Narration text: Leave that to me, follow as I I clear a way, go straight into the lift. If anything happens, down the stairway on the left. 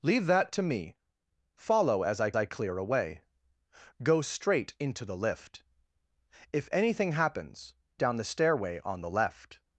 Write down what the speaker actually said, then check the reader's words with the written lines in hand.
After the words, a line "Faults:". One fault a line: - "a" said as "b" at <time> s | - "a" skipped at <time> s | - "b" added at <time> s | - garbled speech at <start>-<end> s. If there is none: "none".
Leave that to me, follow as I I clear a way, go straight into the lift. If anything happens, down the stairway on the left.
Faults:
none